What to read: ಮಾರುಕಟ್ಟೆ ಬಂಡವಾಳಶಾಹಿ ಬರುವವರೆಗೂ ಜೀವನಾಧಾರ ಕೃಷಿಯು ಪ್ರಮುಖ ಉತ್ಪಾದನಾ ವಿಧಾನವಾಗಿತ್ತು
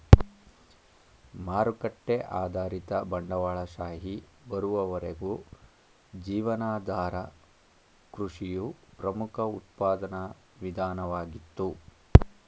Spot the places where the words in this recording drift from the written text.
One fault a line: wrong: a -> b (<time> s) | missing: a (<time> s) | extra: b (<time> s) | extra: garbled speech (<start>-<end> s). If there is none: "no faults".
extra: ಆಧಾರಿತ (2.4 s)